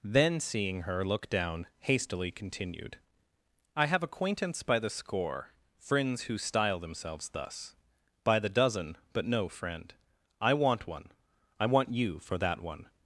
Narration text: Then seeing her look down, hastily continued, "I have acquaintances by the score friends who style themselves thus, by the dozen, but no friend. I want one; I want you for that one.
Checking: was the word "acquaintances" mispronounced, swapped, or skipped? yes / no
yes